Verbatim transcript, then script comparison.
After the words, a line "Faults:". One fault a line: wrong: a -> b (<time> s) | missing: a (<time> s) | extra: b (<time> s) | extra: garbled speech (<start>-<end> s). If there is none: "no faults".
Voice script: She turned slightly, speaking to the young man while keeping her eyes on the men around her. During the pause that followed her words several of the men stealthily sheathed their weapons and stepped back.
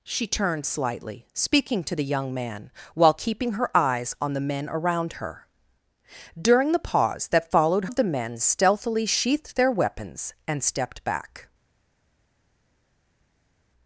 She turned slightly, speaking to the young man while keeping her eyes on the men around her. During the pause that followed of the men stealthily sheathed their weapons and stepped back.
Faults:
missing: her words several (7.9 s)